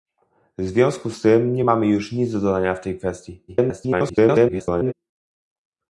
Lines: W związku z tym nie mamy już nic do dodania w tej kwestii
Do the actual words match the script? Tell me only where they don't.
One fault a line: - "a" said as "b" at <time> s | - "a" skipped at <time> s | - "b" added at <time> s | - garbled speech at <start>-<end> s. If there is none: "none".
- garbled speech at 3.5-4.9 s